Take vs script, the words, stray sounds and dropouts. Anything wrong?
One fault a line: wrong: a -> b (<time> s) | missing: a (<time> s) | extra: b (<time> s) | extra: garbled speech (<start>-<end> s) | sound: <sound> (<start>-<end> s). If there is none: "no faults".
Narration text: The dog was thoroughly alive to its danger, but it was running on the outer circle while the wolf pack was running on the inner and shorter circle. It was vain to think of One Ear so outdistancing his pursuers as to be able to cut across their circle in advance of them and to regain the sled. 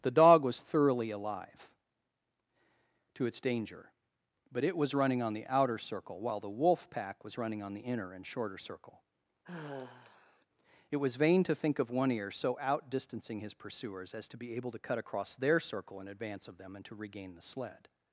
sound: sigh (9.4-10.5 s)